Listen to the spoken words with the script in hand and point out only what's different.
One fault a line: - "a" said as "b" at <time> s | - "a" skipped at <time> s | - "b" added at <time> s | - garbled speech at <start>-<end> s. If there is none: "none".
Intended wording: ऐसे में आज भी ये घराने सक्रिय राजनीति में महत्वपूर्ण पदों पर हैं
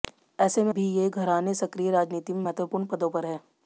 - "आज" skipped at 0.7 s